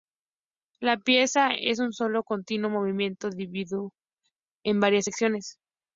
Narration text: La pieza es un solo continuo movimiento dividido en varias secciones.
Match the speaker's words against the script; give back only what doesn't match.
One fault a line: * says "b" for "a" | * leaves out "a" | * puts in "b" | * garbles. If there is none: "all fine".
all fine